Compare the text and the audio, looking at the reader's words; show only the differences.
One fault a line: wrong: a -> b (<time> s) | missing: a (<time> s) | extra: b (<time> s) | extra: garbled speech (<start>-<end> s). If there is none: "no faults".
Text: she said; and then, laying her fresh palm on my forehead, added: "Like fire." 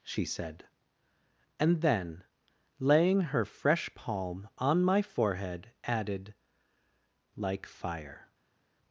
no faults